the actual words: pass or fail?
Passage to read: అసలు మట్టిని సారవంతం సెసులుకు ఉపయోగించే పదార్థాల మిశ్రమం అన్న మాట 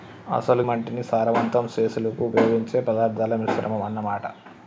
pass